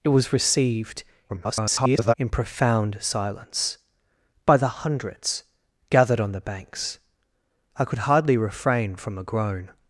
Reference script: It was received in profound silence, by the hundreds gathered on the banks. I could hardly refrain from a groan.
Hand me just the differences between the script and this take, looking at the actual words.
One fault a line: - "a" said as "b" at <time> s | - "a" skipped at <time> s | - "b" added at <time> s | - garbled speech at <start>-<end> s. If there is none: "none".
- garbled speech at 1.3-2.1 s